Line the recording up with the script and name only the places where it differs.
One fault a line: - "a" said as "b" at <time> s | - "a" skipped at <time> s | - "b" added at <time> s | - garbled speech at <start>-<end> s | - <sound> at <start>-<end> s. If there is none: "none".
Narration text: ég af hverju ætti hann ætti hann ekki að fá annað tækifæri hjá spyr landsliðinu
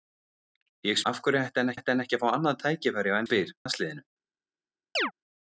- chirp at 5.0-5.1 s